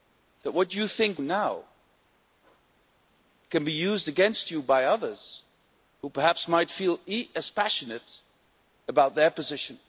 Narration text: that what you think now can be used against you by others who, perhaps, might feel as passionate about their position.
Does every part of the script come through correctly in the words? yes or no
yes